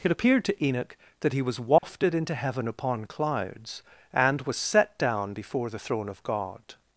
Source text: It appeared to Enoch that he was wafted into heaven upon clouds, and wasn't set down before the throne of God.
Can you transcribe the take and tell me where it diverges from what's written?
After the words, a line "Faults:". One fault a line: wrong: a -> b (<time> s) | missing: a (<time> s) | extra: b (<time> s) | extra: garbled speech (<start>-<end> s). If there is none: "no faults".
It appeared to Enoch that he was wafted into heaven upon clouds, and was set down before the throne of God.
Faults:
wrong: wasn't -> was (4.4 s)